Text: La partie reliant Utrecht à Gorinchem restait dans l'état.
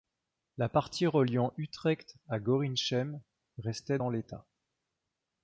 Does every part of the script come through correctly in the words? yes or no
yes